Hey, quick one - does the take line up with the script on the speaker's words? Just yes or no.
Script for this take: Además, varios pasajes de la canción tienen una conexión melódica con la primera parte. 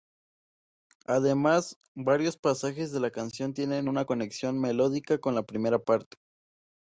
yes